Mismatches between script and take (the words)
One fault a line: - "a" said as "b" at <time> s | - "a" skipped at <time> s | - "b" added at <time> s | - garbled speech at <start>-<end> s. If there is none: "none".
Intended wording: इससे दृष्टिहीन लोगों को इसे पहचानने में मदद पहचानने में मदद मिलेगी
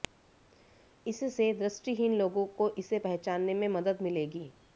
- "पहचानने में मदद" skipped at 4.0 s